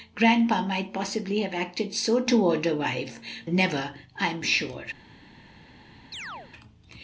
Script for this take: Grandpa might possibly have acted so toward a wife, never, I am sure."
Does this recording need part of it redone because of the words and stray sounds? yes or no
yes